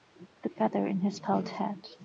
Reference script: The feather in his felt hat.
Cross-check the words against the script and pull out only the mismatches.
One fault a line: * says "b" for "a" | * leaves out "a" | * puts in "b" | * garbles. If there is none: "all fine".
all fine